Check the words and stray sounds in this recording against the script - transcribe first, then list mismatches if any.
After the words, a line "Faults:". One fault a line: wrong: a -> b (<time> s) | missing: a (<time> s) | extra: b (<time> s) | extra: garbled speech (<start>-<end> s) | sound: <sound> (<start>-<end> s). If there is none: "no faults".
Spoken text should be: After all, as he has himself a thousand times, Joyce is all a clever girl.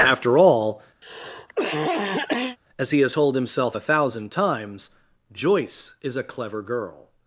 After all, as he has told himself a thousand times, Joyce is a clever girl.
Faults:
sound: cough (1.0-2.6 s)
extra: told (3.1 s)
missing: all (6.2 s)